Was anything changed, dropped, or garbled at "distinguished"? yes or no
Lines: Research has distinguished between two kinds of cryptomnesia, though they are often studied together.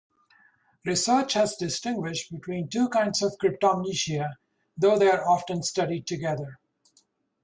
no